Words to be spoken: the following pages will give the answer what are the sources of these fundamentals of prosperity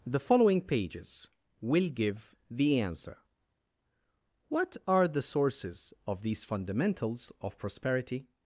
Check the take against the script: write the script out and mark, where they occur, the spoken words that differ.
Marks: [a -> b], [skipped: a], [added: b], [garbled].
the following pages will give the answer what are the sources of these fundamentals of prosperity